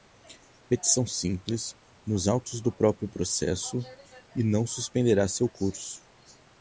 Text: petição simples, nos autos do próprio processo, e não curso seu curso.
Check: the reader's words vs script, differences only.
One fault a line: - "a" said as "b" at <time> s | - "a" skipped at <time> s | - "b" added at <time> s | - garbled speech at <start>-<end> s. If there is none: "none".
- "curso" said as "suspenderá" at 4.7 s